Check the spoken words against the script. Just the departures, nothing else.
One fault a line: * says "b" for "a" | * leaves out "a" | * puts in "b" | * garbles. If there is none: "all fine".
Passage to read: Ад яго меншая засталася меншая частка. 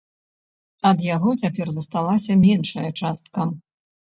* says "цяпер" for "меншая"